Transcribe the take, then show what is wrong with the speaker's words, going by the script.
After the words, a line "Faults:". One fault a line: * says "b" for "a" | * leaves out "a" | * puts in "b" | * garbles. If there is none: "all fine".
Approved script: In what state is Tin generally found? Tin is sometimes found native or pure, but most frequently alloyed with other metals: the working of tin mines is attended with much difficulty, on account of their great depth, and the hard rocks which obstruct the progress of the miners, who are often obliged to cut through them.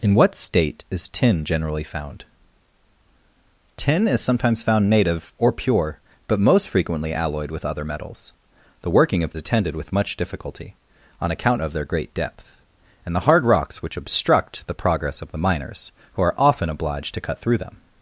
In what state is Tin generally found? Tin is sometimes found native or pure, but most frequently alloyed with other metals: the working of attended with much difficulty, on account of their great depth, and the hard rocks which obstruct the progress of the miners, who are often obliged to cut through them.
Faults:
* leaves out "tin mines is"